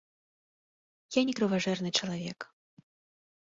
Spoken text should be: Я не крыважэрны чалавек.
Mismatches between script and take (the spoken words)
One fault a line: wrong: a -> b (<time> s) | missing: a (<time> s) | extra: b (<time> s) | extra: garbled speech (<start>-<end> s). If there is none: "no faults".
no faults